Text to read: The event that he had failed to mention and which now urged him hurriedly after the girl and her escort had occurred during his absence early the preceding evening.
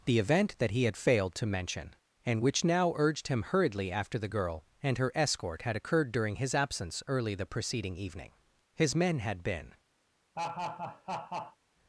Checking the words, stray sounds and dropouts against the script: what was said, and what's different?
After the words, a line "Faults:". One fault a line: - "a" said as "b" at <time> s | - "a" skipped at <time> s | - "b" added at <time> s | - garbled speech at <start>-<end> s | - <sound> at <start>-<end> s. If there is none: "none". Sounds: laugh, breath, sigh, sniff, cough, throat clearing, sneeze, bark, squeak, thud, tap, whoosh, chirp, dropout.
The event that he had failed to mention and which now urged him hurriedly after the girl and her escort had occurred during his absence early the preceding evening. His men had been
Faults:
- "His men had been" added at 8.8 s
- laugh at 10.3-11.6 s